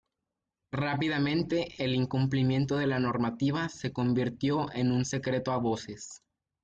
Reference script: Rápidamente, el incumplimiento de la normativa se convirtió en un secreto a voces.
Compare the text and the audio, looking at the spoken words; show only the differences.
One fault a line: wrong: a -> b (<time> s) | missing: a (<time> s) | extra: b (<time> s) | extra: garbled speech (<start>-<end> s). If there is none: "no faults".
no faults